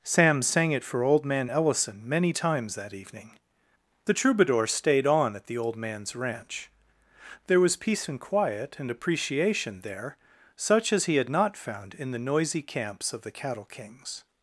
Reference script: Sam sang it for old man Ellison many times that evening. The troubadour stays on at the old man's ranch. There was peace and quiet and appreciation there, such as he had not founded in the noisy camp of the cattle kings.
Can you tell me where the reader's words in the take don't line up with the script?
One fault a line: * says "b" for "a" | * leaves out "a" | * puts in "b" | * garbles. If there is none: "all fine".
* says "stayed" for "stays"
* says "found" for "founded"
* says "camps" for "camp"